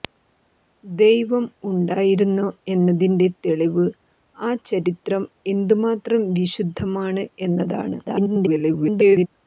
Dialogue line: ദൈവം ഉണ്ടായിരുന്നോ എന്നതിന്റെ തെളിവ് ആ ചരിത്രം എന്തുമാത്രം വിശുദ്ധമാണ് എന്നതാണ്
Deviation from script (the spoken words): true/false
true